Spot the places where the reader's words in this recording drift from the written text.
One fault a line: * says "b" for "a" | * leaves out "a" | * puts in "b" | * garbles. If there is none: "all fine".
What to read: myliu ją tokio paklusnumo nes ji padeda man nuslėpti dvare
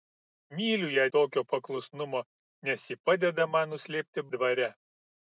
all fine